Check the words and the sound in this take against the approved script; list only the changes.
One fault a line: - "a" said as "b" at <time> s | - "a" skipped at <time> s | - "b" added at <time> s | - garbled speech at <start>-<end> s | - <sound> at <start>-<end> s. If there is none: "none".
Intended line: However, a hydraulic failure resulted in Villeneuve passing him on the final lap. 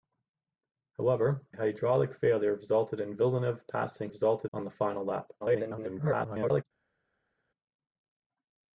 - "a" skipped at 1.5 s
- "him" said as "resulted" at 4.1 s
- garbled speech at 5.4-6.6 s